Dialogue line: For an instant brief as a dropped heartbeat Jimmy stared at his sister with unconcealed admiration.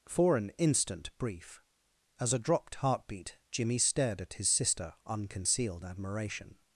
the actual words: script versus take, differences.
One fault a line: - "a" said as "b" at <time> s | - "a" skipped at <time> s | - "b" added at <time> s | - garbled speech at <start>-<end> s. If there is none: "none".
- "with" skipped at 4.9 s